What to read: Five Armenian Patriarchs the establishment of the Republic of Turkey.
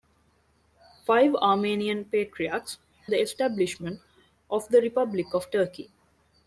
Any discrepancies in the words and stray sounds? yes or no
no